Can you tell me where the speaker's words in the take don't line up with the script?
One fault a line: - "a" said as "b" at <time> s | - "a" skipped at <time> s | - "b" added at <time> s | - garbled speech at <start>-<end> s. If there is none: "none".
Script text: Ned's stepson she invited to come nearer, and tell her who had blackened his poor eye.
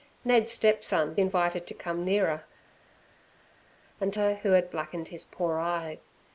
- "she" skipped at 1.2 s
- "tell" skipped at 4.1 s